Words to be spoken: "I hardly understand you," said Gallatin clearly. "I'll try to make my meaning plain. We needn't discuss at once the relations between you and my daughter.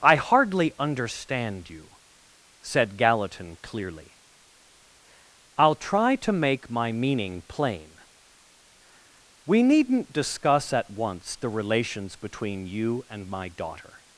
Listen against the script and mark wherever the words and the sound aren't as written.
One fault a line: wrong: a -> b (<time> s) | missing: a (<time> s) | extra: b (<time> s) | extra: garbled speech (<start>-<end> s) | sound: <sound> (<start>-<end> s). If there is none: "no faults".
no faults